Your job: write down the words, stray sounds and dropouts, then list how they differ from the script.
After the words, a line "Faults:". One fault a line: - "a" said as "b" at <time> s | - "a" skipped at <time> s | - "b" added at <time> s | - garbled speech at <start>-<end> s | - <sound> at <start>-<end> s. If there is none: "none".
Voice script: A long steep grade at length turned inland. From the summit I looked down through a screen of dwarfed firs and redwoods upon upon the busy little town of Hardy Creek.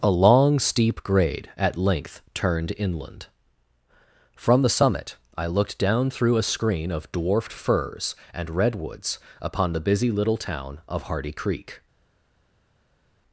A long steep grade at length turned inland. From the summit I looked down through a screen of dwarfed firs and redwoods upon the busy little town of Hardy Creek.
Faults:
- "upon" skipped at 9.7 s